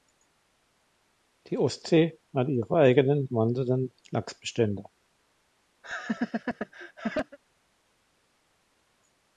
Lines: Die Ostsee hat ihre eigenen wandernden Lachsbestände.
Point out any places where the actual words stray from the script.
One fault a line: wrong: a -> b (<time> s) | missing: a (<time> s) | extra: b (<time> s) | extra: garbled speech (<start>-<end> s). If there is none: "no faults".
no faults